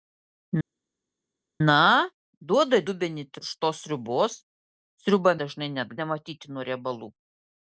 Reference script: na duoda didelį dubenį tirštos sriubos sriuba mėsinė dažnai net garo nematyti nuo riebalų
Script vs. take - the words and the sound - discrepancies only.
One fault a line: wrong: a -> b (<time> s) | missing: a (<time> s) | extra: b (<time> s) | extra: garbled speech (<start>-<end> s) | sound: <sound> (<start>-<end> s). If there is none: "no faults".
missing: didelį (2.8 s)
missing: mėsinė (5.3 s)
missing: garo (6.0 s)